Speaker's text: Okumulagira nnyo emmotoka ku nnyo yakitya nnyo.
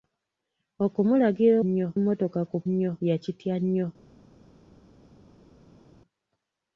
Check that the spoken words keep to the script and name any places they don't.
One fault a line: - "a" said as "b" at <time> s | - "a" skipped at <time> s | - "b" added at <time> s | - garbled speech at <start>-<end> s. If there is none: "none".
none